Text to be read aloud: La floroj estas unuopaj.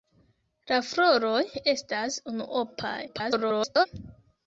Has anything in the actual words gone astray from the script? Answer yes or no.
yes